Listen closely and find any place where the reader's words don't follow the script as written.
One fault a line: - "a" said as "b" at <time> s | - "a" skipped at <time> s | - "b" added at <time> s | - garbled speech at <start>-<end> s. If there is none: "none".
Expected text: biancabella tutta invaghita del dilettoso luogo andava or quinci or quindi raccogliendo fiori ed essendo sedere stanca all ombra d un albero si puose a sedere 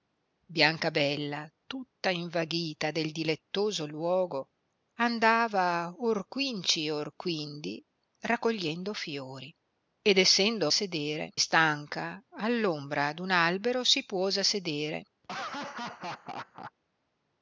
none